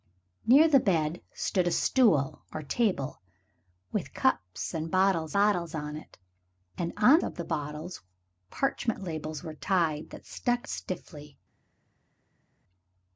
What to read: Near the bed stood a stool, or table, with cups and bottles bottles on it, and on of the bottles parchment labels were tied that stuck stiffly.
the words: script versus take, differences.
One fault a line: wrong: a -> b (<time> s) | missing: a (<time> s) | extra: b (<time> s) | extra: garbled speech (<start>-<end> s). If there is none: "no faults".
no faults